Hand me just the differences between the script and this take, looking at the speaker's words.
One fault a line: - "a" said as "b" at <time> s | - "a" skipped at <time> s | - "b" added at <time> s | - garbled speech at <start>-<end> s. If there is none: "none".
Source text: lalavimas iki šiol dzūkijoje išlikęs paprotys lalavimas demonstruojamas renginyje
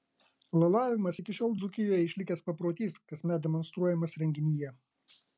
- "lalavimas" said as "kasmet" at 3.1 s